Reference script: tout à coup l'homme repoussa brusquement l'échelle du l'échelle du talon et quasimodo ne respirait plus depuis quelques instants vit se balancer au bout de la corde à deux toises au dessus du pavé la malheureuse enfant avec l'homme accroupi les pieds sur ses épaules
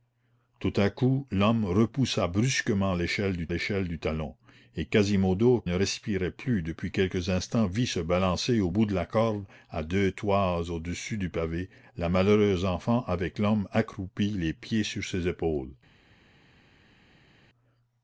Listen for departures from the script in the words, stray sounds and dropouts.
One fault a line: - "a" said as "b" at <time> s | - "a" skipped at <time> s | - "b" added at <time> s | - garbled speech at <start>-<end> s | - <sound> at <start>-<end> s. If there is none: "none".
none